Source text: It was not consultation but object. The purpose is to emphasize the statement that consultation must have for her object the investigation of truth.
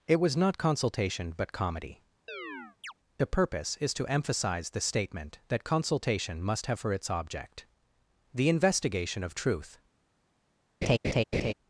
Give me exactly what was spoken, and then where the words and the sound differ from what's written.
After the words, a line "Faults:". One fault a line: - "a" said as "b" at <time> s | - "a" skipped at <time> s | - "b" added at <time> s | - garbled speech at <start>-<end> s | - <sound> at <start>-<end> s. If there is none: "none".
It was not consultation but comedy. The purpose is to emphasize the statement that consultation must have for its object the investigation of truth.
Faults:
- "object" said as "comedy" at 1.5 s
- chirp at 2.3-2.9 s
- "her" said as "its" at 6.9 s
- laugh at 10.8-11.5 s